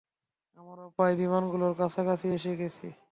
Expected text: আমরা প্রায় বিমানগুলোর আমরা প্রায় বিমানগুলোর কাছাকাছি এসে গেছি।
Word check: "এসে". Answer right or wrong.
right